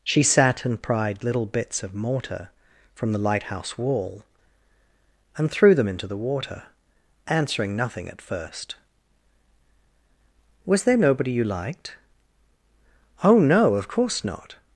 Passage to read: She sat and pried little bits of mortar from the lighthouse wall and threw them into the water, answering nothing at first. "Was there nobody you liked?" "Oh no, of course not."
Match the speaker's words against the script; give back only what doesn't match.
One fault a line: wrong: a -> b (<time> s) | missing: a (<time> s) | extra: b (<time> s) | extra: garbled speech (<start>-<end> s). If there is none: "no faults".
no faults